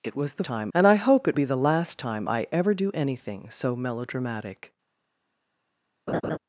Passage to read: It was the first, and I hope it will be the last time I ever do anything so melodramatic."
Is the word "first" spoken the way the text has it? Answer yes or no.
no